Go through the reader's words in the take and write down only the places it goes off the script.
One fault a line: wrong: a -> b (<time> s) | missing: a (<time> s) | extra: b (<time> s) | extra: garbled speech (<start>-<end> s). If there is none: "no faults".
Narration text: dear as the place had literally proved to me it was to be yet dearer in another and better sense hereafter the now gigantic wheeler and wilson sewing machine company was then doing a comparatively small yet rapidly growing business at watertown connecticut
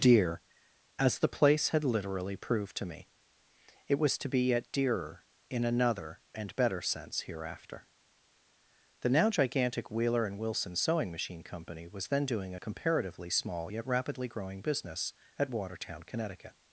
no faults